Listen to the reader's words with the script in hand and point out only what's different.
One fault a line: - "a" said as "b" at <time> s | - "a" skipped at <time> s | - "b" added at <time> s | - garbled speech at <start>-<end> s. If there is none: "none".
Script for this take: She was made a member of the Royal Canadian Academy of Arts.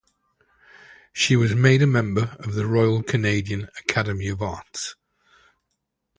none